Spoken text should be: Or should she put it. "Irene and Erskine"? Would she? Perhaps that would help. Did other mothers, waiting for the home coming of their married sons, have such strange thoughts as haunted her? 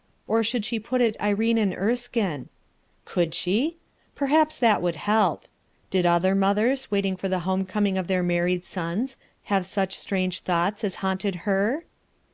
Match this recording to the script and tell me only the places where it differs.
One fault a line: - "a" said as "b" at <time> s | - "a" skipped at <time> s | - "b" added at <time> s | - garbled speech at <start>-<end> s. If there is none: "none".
- "Would" said as "Could" at 3.0 s